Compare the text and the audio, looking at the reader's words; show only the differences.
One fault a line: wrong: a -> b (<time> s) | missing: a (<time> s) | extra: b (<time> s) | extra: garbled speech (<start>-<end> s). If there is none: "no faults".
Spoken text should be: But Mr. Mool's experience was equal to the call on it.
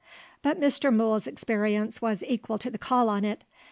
no faults